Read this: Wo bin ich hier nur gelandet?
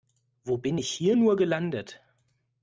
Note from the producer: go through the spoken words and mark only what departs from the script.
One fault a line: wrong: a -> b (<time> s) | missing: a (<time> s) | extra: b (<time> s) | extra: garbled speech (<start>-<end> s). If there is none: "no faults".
no faults